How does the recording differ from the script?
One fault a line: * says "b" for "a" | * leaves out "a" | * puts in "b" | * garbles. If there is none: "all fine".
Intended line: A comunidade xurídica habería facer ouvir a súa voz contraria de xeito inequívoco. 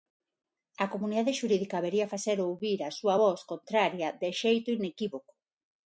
all fine